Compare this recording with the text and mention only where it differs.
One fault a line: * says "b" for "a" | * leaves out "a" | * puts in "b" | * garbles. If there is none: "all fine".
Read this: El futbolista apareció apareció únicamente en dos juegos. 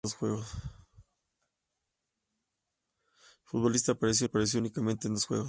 all fine